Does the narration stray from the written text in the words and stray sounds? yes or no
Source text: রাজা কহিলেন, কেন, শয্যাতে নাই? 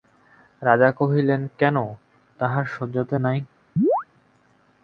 yes